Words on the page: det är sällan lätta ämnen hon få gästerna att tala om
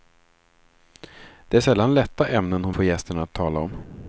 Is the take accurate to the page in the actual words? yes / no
yes